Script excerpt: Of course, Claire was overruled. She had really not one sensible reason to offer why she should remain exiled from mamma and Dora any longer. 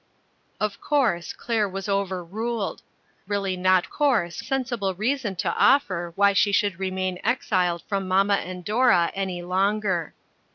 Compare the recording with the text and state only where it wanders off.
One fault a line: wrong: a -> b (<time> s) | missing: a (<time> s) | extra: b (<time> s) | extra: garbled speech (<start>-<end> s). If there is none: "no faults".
missing: She had (2.8 s)
wrong: one -> course (3.9 s)